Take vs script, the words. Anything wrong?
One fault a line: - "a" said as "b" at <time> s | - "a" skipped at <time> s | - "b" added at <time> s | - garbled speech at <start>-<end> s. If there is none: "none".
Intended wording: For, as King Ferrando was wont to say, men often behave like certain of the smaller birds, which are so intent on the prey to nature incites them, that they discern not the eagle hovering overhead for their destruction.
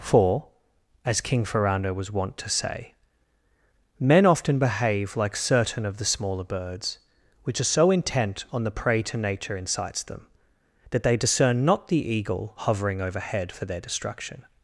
none